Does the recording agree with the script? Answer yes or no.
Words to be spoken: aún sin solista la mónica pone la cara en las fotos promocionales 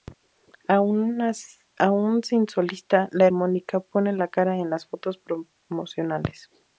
yes